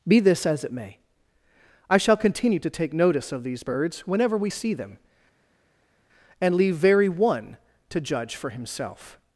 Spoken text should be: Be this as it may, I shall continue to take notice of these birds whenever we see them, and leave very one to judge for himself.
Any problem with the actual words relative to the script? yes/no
no